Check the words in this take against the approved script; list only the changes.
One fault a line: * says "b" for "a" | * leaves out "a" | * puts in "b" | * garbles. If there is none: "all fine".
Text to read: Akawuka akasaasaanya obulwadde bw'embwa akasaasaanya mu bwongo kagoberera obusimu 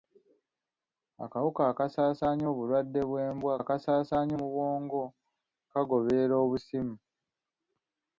all fine